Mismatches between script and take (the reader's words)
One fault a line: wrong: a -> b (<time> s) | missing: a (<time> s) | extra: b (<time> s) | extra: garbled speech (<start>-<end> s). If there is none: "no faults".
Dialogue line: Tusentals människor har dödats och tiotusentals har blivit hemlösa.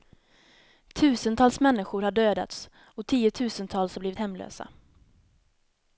no faults